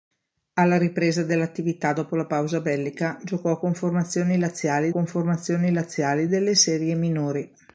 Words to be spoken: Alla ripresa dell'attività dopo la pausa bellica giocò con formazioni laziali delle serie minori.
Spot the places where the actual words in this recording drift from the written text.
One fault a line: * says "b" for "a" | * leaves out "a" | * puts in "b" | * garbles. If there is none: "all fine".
* puts in "con formazioni laziali"